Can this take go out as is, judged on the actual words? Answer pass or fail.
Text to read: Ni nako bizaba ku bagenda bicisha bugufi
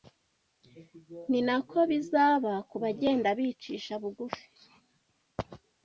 pass